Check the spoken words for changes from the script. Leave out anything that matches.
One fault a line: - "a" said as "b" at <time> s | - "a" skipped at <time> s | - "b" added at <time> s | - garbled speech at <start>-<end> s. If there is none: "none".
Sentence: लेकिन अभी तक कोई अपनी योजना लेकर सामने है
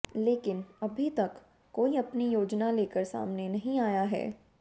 - "नहीं आया" added at 3.5 s